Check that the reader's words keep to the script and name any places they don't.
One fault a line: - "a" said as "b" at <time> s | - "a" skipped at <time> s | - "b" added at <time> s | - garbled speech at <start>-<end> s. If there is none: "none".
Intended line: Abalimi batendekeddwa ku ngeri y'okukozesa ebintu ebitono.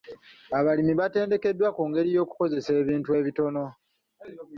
none